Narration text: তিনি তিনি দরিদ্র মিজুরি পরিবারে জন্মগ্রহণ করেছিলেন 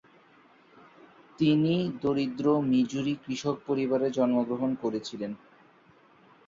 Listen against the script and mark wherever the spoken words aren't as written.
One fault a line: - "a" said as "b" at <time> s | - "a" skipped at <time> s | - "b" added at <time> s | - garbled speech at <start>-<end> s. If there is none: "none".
- "তিনি" skipped at 1.7 s
- "কৃষক" added at 3.2 s